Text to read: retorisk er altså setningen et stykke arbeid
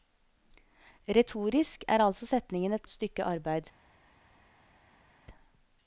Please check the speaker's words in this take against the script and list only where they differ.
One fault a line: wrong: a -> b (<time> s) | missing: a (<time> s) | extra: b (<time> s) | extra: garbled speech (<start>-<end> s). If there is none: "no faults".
no faults